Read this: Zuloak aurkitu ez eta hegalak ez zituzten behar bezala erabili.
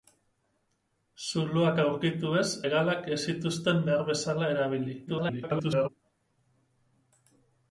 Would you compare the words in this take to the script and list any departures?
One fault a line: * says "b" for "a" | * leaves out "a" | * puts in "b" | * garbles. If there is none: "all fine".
* leaves out "eta"
* garbles